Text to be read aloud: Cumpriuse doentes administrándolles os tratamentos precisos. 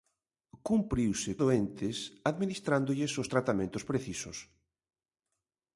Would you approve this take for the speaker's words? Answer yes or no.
yes